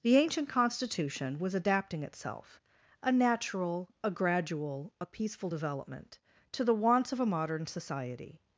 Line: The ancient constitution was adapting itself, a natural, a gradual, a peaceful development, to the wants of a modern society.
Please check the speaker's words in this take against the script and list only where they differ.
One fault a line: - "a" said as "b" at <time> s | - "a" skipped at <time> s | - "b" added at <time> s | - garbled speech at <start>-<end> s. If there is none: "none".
none